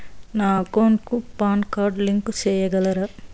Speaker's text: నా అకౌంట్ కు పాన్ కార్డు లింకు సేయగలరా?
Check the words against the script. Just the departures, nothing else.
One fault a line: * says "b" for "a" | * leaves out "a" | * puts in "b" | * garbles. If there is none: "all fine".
all fine